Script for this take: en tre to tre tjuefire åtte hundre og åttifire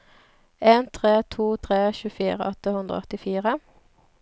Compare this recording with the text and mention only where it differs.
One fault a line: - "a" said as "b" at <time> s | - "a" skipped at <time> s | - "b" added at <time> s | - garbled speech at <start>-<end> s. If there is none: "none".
none